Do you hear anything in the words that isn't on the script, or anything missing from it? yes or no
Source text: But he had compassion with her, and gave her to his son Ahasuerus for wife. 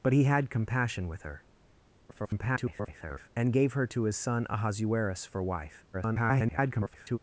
yes